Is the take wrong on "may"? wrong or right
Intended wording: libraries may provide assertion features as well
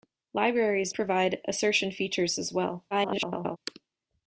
wrong